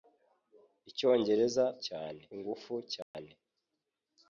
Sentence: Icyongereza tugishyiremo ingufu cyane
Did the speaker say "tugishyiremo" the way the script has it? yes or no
no